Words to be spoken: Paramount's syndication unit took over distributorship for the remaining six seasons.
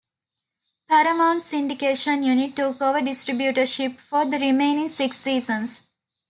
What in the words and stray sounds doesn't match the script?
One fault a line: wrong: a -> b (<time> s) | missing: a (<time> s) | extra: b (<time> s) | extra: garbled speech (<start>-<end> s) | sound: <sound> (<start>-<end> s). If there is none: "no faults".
no faults